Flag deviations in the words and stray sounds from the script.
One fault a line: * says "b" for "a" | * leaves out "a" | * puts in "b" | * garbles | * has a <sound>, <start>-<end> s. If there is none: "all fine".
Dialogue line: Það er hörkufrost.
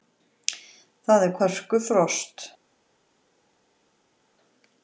all fine